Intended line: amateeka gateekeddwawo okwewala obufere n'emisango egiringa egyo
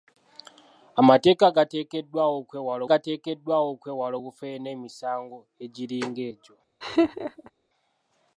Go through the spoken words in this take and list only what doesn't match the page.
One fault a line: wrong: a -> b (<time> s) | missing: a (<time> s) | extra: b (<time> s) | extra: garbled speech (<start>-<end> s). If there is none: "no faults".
extra: gateekeddwawo okwewala (2.9 s)